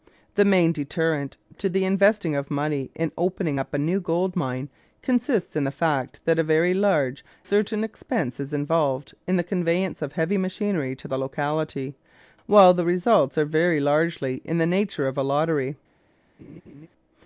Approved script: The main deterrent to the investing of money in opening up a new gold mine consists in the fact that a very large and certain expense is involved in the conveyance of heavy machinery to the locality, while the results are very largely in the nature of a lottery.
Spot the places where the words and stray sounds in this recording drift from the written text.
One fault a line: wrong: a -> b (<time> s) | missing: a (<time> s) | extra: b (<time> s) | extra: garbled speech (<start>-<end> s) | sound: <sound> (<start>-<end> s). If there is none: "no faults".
missing: and (7.2 s)
sound: laugh (16.4-16.9 s)